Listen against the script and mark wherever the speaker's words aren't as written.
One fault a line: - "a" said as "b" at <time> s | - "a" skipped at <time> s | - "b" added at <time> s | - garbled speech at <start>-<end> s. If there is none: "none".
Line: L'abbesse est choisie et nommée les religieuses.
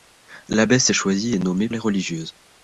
none